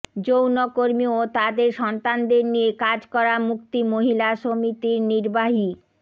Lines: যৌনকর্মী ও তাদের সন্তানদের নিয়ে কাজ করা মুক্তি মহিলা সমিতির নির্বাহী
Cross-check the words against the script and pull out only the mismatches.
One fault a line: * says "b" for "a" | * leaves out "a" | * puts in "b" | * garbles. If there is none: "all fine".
all fine